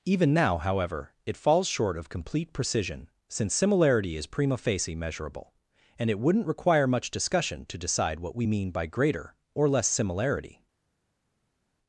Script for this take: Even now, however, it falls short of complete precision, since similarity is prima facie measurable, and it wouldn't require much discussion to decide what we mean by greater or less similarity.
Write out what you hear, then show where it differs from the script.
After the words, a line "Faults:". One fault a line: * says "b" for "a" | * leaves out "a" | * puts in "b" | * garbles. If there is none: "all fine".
Even now, however, it falls short of complete precision, since similarity is prima facie measurable, and it wouldn't require much discussion to decide what we mean by greater or less similarity.
Faults:
all fine